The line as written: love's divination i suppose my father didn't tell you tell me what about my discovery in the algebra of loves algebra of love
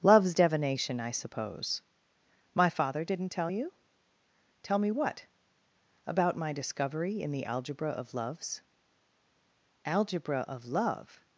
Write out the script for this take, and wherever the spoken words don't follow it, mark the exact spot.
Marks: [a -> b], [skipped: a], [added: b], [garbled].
love's divination i suppose my father didn't tell you tell me what about my discovery in the algebra of loves algebra of love